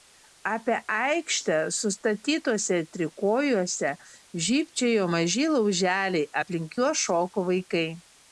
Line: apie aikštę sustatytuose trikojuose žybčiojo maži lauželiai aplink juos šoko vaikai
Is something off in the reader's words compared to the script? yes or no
no